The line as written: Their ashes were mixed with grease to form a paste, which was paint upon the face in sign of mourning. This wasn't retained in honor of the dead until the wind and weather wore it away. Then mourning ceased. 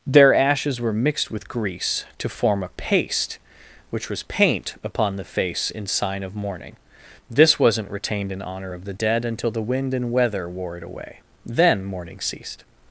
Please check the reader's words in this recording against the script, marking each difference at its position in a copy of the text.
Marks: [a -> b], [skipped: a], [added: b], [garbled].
Their ashes were mixed with grease to form a paste, which was paint upon the face in sign of mourning. This wasn't retained in honor of the dead until the wind and weather wore it away. Then mourning ceased.